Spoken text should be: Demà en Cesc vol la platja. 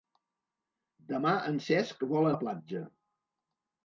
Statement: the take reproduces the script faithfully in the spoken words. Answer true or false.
true